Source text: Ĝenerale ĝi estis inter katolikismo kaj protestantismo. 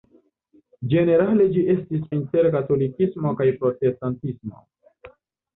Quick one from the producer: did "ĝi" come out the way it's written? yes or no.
yes